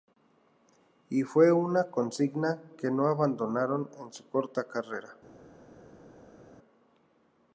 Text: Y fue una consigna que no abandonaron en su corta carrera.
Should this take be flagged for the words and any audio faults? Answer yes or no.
no